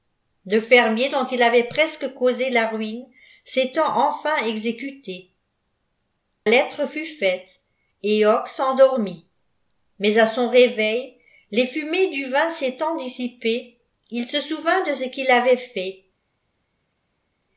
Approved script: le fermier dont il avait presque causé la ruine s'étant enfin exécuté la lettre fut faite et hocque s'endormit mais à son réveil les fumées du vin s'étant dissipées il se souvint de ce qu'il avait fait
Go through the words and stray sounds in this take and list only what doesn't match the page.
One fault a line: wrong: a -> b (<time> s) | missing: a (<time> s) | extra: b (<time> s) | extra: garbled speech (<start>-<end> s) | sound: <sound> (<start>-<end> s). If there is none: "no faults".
missing: la (5.3 s)